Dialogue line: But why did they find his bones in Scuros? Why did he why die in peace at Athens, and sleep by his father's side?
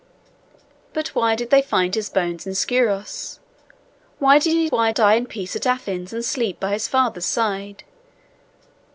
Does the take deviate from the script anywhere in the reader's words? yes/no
no